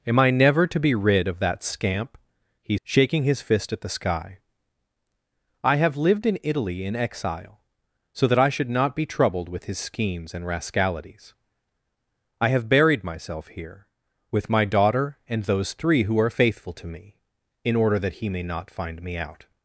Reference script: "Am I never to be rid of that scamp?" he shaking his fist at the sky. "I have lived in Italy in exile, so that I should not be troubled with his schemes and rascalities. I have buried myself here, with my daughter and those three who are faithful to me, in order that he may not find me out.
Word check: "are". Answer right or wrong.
right